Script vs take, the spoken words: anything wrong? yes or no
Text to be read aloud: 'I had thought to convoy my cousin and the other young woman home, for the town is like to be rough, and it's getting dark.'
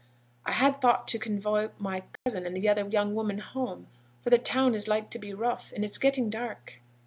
no